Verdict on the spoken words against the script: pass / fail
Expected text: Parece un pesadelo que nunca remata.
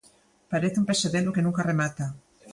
pass